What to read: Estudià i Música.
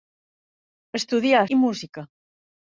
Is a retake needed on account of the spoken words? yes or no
no